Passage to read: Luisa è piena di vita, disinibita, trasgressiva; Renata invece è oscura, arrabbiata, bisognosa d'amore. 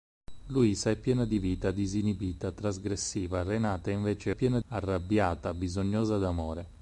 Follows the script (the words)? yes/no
no